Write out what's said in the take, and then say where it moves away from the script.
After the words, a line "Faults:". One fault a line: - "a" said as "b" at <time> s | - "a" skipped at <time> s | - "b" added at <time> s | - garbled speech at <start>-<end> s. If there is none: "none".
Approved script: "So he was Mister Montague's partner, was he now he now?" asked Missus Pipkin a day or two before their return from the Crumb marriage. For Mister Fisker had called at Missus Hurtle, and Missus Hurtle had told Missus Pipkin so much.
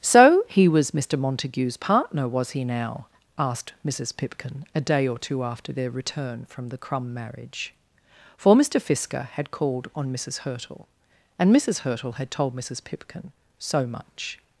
"So he was Mister Montague's partner, was he now?" asked Missus Pipkin a day or two after their return from the Crumb marriage. For Mister Fisker had called on Missus Hurtle, and Missus Hurtle had told Missus Pipkin so much.
Faults:
- "he now" skipped at 3.0 s
- "before" said as "after" at 5.4 s
- "at" said as "on" at 9.9 s